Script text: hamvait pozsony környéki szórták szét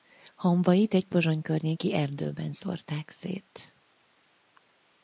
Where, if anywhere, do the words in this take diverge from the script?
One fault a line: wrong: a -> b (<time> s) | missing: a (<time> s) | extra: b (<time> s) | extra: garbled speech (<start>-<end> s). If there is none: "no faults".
extra: egy (0.9 s)
extra: erdőben (1.9 s)